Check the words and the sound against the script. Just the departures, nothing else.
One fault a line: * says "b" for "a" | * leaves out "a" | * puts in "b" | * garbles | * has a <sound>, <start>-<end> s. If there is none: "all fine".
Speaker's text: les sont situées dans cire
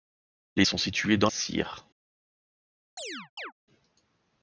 * has a chirp, 3.0-3.5 s